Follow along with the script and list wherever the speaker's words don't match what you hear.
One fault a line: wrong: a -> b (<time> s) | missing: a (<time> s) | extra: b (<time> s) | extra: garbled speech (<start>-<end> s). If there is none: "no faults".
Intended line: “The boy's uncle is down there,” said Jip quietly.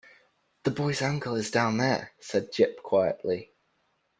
no faults